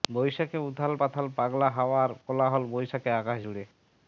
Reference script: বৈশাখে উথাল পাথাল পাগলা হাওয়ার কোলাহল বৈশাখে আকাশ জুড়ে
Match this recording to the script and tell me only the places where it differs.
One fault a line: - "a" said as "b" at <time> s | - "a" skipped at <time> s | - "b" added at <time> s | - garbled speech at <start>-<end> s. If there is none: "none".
none